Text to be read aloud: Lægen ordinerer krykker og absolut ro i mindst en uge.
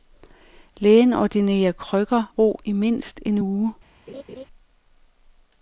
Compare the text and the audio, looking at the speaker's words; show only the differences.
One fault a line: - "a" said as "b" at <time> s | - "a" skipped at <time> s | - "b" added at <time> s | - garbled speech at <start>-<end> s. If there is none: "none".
- "og absolut" skipped at 2.4 s